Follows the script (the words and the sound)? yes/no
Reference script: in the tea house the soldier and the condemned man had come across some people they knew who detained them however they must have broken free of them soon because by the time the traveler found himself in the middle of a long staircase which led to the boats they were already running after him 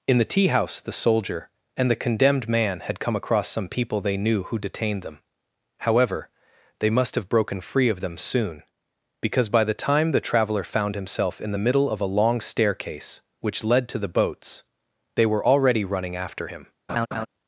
no